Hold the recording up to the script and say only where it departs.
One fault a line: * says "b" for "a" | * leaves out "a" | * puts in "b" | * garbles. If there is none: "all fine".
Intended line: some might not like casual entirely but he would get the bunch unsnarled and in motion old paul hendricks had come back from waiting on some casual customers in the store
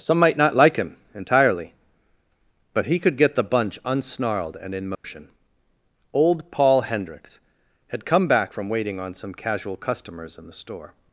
* says "him" for "casual"
* says "could" for "would"